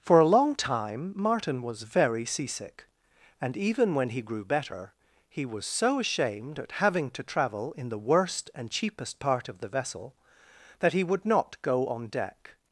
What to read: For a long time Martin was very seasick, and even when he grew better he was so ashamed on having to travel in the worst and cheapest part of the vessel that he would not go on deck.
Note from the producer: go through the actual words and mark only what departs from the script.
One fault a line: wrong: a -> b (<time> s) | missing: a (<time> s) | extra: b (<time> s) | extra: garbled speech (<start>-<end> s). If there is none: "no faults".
wrong: on -> at (6.6 s)